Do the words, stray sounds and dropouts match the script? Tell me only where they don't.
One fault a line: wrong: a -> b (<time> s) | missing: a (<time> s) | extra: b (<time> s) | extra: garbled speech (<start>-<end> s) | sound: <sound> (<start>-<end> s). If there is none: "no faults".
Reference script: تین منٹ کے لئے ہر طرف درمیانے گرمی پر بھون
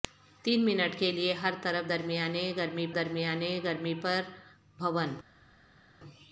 extra: درمیانے گرمی (2.9 s)